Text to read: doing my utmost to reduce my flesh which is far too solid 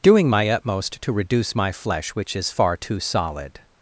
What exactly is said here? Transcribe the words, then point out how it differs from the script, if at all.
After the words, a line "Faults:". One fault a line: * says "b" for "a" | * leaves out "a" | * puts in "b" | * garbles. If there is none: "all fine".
doing my utmost to reduce my flesh which is far too solid
Faults:
all fine